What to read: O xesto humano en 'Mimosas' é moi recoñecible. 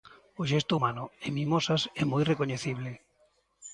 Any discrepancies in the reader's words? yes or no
no